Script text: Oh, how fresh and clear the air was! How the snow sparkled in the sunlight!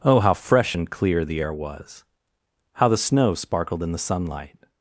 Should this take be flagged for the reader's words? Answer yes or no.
no